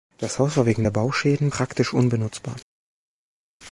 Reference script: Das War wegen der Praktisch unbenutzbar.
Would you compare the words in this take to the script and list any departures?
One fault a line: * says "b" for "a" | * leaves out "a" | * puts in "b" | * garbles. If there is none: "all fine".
* puts in "Haus"
* puts in "Bauschäden"